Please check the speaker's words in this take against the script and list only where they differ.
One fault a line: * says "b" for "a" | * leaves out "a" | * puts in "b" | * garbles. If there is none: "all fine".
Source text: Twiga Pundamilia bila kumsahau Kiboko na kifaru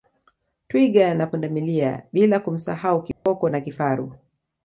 * puts in "na"